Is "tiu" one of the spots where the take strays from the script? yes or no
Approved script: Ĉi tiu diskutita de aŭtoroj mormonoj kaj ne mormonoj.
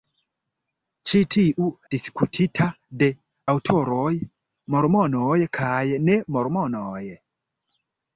no